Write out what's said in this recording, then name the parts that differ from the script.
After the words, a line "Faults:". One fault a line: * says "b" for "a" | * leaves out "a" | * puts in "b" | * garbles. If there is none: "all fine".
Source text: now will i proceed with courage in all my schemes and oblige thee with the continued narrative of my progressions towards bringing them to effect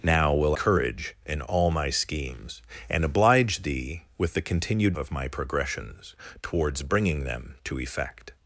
now will courage in all my schemes and oblige thee with the continued of my progressions towards bringing them to effect
Faults:
* leaves out "i proceed with"
* leaves out "narrative"